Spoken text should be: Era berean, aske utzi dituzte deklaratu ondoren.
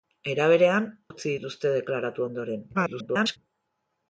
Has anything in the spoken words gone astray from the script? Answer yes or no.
yes